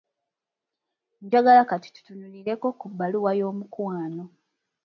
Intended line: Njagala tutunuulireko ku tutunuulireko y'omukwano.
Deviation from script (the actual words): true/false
true